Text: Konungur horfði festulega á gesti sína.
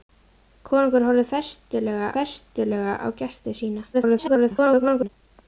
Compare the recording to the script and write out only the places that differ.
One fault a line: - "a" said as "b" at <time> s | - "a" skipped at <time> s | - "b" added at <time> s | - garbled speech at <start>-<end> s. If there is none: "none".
- "festulega" added at 2.2 s
- garbled speech at 3.9-5.1 s